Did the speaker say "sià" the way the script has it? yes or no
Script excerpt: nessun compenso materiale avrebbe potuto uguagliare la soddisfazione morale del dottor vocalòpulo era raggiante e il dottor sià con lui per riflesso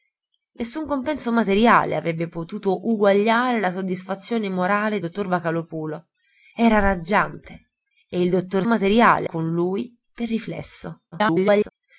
no